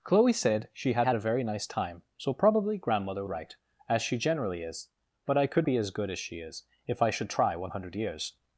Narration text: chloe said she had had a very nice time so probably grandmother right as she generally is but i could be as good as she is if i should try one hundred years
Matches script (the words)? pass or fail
pass